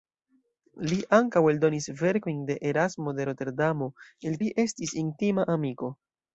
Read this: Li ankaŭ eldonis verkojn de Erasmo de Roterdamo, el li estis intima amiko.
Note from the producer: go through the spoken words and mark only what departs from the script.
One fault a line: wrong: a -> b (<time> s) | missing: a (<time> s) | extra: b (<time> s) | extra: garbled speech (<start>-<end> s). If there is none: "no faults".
no faults